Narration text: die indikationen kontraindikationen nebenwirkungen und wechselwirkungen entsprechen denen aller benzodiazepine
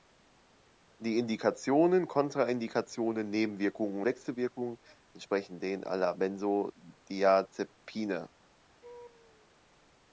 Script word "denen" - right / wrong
right